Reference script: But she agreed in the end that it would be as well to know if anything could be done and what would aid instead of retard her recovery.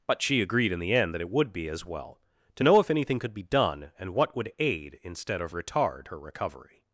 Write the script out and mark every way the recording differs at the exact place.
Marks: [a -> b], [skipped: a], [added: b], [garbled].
But she agreed in the end that it would be as well to know if anything could be done and what would aid instead of retard her recovery.